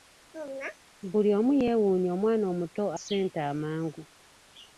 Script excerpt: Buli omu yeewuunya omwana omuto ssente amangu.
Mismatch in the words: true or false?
false